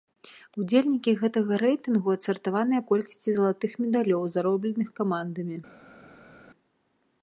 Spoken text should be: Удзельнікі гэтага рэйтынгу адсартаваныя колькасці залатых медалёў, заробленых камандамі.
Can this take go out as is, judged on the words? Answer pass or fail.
pass